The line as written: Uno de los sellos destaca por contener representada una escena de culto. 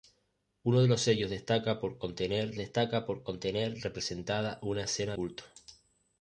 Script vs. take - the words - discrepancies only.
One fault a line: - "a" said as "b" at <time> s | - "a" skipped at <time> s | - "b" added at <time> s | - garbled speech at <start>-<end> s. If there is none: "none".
- "destaca por contener" added at 2.6 s
- "de" skipped at 5.1 s